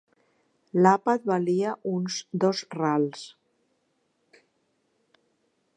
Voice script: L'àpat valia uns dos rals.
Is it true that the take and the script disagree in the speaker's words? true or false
false